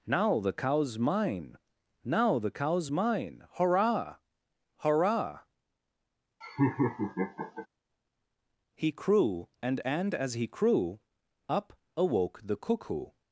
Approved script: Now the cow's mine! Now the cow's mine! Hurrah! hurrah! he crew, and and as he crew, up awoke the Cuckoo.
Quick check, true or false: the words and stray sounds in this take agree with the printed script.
false